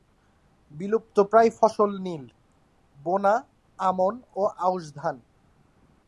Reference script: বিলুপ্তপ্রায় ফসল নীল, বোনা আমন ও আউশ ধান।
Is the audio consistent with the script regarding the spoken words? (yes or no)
yes